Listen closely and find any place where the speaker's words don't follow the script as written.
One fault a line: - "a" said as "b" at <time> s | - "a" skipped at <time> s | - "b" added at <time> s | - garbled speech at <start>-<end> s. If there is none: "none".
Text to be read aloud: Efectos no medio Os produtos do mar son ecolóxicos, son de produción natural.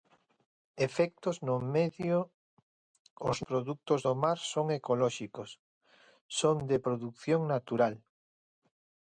none